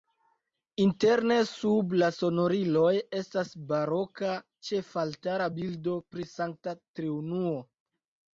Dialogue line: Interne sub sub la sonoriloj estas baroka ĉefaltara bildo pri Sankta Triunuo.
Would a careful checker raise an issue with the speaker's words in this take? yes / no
yes